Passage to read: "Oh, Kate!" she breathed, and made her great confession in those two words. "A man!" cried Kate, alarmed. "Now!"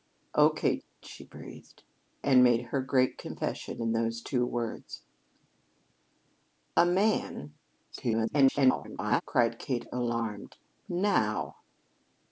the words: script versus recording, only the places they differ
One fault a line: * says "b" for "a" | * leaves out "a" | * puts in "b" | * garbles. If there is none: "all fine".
* garbles